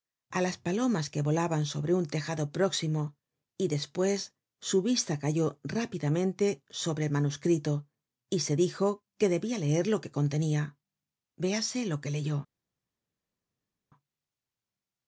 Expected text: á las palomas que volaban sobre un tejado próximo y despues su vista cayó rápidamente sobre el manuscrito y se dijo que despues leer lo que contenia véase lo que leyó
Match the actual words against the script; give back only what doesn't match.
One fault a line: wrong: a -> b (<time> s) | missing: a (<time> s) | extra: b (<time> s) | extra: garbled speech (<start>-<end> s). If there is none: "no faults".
wrong: despues -> debia (9.3 s)